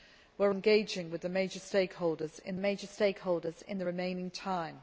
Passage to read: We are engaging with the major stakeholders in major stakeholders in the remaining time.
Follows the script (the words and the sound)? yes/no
yes